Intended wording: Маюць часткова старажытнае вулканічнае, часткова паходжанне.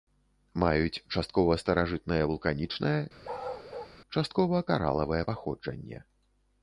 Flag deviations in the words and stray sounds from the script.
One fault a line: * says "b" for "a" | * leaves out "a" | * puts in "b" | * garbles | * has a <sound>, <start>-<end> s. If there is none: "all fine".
* has a bark, 3.2-4.0 s
* puts in "каралавае"